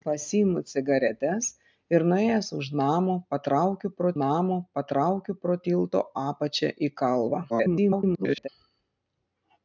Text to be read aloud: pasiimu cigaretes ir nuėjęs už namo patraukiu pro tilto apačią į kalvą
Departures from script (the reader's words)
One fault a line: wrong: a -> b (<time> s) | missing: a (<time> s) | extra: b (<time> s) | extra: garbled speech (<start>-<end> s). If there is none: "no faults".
extra: namo patraukiu pro (4.2 s)
extra: garbled speech (7.5-8.5 s)